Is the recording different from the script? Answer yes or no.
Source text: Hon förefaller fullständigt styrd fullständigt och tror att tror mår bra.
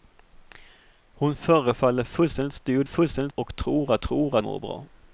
no